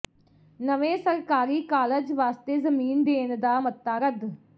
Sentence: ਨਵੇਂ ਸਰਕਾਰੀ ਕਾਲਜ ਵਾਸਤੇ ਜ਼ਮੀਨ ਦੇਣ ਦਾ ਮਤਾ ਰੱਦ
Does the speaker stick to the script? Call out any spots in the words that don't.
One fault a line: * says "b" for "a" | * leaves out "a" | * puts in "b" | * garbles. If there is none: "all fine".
all fine